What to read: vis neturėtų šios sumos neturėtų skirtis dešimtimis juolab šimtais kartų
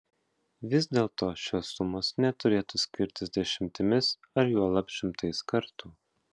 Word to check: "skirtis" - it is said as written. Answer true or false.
true